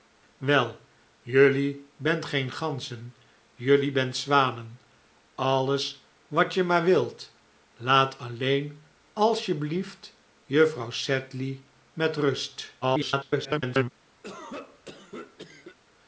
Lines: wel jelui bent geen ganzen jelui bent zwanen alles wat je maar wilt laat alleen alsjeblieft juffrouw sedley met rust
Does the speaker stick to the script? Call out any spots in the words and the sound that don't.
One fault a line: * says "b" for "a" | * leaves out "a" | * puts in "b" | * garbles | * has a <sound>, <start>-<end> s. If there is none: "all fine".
* garbles
* has a cough, 14.2-15.8 s